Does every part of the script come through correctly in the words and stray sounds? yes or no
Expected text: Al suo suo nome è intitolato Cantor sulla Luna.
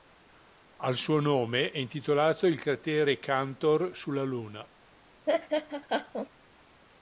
no